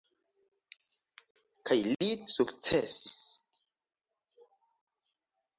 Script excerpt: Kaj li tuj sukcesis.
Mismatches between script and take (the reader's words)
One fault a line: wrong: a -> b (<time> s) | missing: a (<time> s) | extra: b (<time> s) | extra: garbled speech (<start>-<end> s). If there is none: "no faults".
missing: tuj (2.1 s)